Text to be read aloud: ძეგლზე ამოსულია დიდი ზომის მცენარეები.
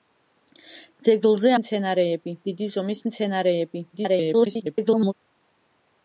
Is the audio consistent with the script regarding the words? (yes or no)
no